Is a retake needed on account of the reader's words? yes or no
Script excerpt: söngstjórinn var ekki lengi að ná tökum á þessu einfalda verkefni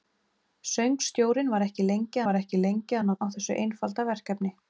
yes